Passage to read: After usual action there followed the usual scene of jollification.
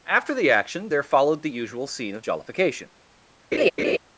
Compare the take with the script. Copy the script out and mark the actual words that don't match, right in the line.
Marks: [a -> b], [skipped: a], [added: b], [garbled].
After [usual -> the] action there followed the usual scene of jollification.